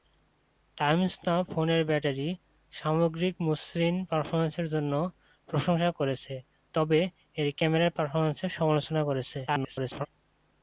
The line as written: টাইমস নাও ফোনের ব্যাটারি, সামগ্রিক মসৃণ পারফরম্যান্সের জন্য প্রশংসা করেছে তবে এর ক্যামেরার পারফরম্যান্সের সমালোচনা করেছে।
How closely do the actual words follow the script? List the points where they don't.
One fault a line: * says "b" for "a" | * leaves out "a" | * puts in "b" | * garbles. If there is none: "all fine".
* garbles